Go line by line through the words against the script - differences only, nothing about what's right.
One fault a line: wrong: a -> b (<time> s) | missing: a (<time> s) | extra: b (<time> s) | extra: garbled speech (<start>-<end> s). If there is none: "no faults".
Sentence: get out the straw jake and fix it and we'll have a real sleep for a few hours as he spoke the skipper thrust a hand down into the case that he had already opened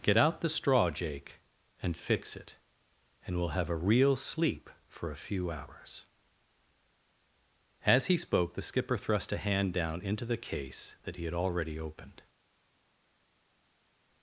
no faults